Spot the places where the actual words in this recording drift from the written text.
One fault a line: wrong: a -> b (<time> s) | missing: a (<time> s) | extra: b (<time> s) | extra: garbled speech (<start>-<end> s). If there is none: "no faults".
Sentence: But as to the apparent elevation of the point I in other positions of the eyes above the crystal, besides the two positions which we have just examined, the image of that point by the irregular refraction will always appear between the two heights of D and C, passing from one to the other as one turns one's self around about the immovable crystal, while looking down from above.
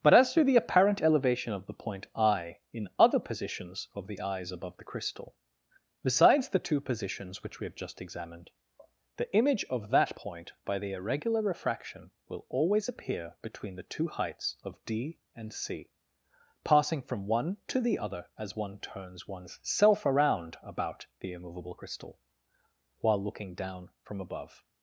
no faults